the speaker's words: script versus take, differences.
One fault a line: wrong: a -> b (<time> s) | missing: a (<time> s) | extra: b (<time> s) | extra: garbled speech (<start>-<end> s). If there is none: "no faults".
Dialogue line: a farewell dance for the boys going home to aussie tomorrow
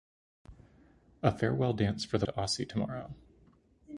missing: boys going home (2.2 s)